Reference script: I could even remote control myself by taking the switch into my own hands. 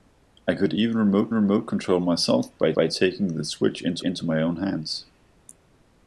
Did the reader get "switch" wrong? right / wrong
right